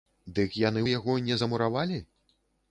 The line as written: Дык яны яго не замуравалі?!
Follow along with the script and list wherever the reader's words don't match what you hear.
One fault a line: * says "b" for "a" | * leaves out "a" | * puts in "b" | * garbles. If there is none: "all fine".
all fine